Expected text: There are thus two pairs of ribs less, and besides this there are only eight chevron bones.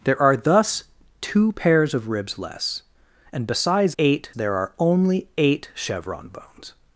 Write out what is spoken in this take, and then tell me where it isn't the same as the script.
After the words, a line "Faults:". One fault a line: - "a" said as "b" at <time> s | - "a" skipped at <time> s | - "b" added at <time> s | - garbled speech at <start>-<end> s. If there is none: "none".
There are thus two pairs of ribs less, and besides eight there are only eight chevron bones.
Faults:
- "this" said as "eight" at 4.0 s